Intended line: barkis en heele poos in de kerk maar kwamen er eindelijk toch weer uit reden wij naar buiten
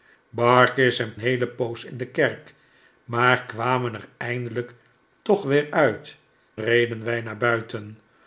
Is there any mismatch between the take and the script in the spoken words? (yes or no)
no